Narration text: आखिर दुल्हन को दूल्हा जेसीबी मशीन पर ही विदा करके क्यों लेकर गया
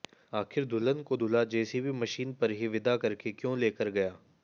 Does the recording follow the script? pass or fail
pass